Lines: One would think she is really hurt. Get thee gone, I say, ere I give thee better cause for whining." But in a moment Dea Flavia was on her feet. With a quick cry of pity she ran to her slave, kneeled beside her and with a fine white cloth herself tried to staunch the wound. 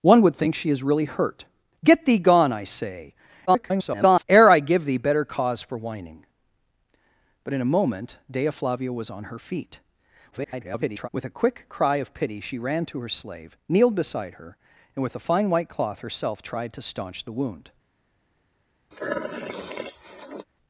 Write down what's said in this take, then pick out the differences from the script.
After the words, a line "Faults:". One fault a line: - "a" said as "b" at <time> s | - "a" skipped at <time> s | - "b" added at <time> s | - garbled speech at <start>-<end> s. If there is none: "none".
One would think she is really hurt. Get thee gone, I say, [garbled] ere I give thee better cause for whining." But in a moment Dea Flavia was on her feet. [garbled] With a quick cry of pity she ran to her slave, kneeled beside her and with a fine white cloth herself tried to staunch the wound.
Faults:
- garbled speech at 3.5-4.2 s
- garbled speech at 10.3-11.1 s